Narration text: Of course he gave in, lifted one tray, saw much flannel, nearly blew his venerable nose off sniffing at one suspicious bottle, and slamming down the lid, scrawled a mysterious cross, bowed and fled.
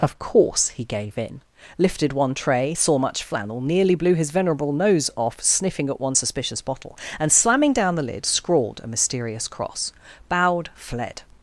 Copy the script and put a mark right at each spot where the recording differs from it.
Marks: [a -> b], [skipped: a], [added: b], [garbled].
Of course he gave in, lifted one tray, saw much flannel, nearly blew his venerable nose off sniffing at one suspicious bottle, and slamming down the lid, scrawled a mysterious cross, bowed [skipped: and] fled.